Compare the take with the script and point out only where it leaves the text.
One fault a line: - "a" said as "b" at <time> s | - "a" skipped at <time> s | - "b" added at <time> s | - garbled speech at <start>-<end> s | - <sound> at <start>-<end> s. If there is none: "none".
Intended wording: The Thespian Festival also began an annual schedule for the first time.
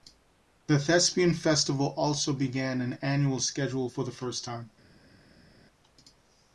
none